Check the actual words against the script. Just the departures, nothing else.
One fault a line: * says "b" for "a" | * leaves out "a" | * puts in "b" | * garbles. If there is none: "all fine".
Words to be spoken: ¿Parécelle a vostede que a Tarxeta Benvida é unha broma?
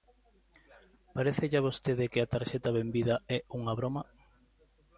all fine